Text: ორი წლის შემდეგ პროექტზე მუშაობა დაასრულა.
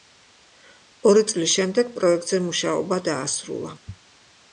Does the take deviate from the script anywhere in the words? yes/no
no